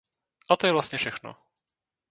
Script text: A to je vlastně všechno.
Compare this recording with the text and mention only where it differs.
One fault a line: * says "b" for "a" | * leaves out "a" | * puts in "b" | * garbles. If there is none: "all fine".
all fine